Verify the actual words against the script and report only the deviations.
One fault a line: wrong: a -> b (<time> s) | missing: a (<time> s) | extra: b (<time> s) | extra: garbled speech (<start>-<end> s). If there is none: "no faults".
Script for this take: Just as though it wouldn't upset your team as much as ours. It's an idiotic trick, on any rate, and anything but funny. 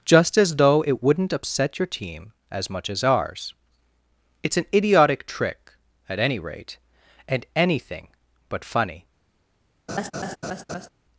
wrong: on -> at (6.1 s)